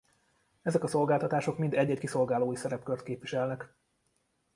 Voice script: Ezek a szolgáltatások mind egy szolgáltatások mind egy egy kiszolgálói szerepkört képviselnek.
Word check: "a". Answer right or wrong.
right